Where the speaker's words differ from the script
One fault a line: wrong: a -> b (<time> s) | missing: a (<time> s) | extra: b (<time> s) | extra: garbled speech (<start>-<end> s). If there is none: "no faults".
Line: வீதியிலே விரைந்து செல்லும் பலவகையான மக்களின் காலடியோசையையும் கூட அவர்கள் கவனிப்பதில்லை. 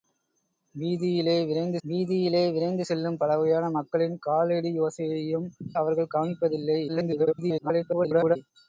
extra: வீதியிலே விரைந்து (1.8 s)
missing: கூட (5.5 s)
extra: garbled speech (6.9-8.4 s)